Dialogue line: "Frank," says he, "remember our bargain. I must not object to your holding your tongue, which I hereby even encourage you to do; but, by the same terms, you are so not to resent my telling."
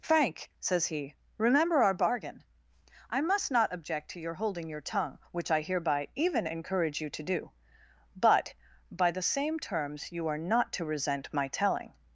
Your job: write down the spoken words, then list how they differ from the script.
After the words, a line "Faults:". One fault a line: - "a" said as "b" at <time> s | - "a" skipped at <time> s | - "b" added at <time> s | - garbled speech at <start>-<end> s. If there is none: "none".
"Frank," says he, "remember our bargain. I must not object to your holding your tongue, which I hereby even encourage you to do; but, by the same terms, you are not to resent my telling."
Faults:
- "so" skipped at 10.4 s